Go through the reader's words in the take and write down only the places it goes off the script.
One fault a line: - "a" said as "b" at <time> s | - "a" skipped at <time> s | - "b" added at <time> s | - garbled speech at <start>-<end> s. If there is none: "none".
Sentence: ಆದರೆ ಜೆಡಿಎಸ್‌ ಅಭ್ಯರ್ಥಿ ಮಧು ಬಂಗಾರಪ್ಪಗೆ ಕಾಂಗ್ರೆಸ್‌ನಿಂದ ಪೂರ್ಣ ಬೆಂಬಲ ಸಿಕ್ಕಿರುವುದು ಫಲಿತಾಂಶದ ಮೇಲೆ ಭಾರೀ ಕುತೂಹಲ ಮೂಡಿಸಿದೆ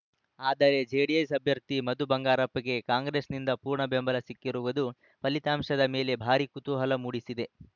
none